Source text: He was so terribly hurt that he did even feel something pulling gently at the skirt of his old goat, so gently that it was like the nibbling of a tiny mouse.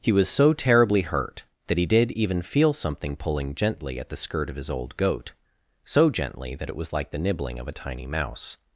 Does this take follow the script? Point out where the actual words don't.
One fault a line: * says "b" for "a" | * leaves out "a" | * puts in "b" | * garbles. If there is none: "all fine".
all fine